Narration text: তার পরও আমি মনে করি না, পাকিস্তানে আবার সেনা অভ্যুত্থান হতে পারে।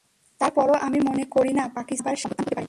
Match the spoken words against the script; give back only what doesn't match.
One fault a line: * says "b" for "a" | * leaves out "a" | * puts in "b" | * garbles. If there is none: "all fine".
* leaves out "সেনা"